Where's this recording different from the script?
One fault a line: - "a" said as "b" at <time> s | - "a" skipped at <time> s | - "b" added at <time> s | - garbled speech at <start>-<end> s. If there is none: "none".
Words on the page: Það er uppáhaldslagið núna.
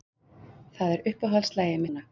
none